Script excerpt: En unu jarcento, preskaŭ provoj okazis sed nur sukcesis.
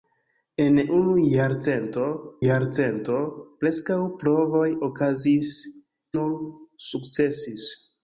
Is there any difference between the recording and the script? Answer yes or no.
yes